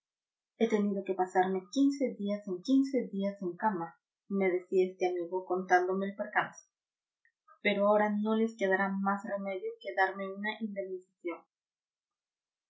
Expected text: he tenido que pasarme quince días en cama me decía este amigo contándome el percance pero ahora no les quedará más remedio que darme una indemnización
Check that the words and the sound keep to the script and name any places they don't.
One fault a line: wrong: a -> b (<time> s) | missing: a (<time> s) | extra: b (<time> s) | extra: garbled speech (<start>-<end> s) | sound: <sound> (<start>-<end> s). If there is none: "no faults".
extra: quince días en (2.6 s)